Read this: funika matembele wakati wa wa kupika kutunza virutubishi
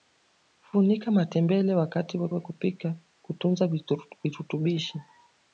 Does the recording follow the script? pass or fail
pass